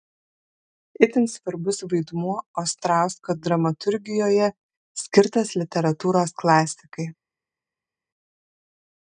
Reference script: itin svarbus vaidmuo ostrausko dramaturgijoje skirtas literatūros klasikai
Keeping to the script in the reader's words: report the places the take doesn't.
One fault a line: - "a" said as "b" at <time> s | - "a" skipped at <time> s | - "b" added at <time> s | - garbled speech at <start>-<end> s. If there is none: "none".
none